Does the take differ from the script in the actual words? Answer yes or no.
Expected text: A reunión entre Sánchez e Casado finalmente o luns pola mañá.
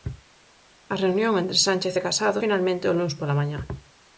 no